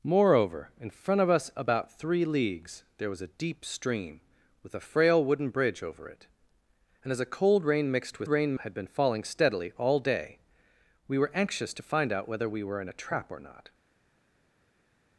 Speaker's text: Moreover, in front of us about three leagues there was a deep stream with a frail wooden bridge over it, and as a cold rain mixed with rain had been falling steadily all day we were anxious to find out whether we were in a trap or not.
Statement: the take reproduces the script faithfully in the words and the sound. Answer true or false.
true